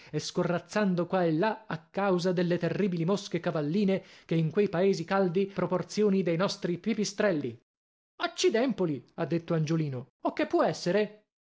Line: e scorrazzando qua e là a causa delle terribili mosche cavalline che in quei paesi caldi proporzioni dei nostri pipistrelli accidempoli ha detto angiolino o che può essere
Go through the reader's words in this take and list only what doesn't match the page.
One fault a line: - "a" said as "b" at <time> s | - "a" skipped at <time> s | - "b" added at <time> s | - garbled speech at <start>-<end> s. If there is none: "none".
none